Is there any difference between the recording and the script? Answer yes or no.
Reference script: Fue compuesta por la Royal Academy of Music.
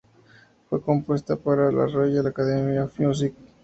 yes